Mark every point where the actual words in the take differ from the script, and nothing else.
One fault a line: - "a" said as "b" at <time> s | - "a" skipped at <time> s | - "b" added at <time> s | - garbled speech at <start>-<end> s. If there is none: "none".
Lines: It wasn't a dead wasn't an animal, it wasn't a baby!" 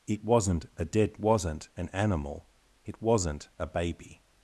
none